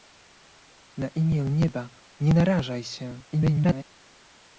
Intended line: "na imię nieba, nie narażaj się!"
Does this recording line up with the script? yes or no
no